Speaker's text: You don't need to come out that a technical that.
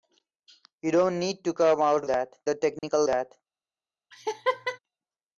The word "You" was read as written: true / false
true